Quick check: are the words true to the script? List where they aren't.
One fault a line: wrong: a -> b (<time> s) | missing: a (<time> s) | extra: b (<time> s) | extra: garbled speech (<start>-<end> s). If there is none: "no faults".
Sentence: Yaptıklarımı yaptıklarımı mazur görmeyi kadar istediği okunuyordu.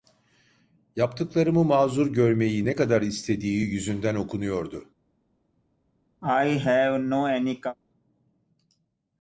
missing: yaptıklarımı (1.6 s)
extra: ne (2.6 s)
extra: yüzünden (3.6 s)